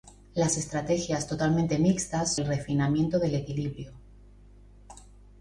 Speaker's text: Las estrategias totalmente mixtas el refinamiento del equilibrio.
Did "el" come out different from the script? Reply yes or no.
no